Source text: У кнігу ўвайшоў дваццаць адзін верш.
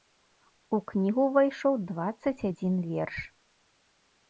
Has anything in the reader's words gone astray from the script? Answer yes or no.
no